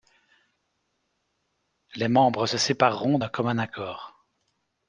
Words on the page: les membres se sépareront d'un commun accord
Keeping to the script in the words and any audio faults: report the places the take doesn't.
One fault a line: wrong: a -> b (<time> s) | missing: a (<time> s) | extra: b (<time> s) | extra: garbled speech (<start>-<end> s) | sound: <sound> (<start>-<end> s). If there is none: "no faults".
no faults